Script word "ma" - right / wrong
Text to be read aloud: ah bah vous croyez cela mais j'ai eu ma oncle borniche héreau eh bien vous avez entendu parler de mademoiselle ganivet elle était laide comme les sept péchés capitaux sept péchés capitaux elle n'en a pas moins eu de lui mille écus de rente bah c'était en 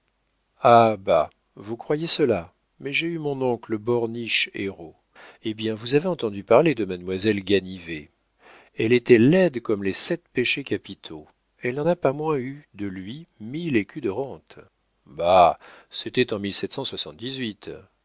wrong